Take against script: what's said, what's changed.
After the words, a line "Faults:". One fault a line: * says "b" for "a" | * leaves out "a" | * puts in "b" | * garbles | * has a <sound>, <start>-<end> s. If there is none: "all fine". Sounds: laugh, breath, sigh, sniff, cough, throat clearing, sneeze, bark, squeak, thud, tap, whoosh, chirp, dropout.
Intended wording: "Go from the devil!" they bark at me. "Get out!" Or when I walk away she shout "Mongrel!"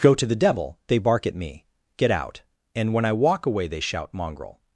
"Go to the devil!" they bark at me. "Get out!" And when I walk away they shout "Mongrel!"
Faults:
* says "to" for "from"
* says "And" for "Or"
* says "they" for "she"